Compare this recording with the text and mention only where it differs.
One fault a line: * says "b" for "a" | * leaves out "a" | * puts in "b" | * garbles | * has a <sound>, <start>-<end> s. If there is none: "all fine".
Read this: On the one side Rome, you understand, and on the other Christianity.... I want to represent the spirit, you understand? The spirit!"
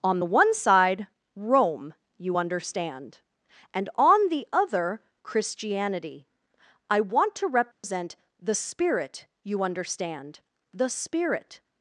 * has a dropout, 7.7-7.8 s